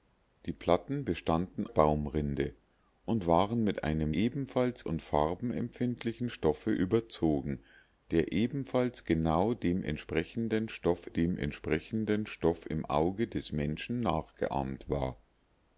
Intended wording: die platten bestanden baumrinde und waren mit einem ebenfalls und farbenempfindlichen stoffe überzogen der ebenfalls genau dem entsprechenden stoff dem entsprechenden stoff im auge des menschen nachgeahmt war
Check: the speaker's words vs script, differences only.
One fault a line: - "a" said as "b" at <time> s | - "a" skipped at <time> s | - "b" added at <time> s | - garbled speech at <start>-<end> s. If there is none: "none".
none